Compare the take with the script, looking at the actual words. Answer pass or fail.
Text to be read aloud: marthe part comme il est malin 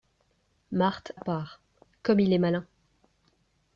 pass